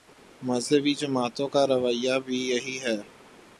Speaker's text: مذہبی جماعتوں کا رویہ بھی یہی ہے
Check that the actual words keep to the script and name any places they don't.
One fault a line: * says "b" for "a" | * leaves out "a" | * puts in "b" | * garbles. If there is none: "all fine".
all fine